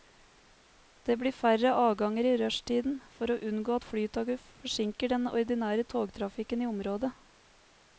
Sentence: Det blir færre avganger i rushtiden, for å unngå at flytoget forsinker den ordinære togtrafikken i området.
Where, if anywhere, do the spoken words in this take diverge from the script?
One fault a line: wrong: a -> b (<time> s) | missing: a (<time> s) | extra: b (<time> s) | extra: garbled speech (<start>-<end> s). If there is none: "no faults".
no faults